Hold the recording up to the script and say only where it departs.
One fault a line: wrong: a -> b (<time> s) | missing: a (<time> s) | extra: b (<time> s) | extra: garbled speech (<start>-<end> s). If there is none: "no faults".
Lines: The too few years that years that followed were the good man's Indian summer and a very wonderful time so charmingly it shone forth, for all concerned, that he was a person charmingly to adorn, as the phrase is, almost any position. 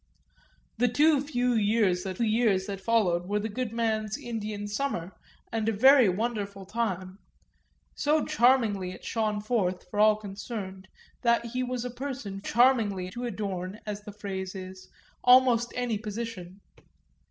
no faults